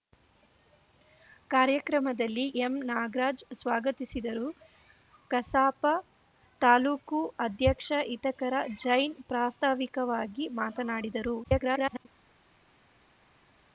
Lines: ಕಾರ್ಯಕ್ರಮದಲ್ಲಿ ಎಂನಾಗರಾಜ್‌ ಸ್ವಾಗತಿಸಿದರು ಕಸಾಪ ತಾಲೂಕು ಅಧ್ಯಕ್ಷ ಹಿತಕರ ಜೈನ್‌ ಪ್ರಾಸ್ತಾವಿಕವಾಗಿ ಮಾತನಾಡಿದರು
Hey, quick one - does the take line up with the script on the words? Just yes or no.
no